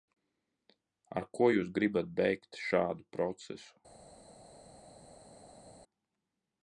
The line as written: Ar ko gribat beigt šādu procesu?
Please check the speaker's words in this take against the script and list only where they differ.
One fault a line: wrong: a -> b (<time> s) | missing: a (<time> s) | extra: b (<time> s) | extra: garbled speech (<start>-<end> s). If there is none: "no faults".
extra: jūs (1.5 s)